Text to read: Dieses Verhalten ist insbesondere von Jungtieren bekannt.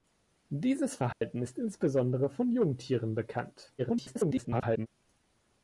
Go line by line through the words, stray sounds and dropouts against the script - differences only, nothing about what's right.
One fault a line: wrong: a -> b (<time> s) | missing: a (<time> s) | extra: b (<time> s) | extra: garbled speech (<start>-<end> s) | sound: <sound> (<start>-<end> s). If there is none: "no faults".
sound: dropout (1.1-1.2 s)
extra: garbled speech (3.8-4.9 s)